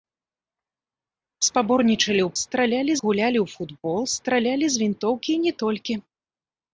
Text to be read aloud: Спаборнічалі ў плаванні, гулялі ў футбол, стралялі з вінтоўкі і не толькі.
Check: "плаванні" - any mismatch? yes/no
yes